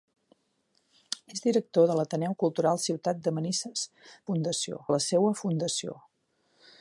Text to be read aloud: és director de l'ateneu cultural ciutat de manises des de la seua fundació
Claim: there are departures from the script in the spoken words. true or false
true